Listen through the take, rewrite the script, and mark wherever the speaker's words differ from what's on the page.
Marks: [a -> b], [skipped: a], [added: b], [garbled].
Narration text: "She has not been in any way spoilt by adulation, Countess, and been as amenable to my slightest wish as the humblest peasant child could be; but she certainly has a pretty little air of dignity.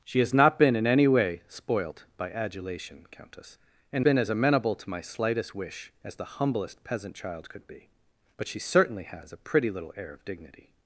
"She has not been in any way spoilt by adulation, Countess, and been as amenable to my slightest wish as the humblest peasant child could be; but she certainly has a pretty little air of dignity.